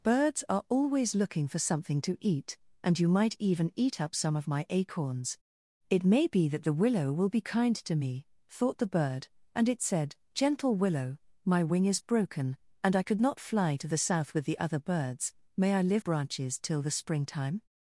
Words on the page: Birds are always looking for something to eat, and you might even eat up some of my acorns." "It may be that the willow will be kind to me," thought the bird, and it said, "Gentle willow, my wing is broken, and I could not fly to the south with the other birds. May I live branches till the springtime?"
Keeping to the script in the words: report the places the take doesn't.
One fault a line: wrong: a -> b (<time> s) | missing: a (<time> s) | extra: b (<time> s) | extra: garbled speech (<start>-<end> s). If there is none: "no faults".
no faults